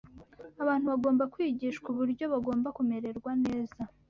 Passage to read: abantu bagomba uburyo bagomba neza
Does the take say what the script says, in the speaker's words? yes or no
no